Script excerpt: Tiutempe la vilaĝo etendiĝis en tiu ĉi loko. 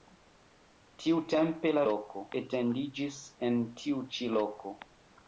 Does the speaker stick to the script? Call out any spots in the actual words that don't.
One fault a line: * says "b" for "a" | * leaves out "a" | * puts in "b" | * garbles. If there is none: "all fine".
* says "loko" for "vilaĝo"